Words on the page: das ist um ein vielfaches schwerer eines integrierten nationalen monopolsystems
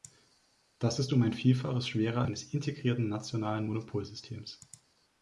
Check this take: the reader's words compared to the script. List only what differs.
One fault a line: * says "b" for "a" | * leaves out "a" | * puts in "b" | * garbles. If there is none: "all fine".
all fine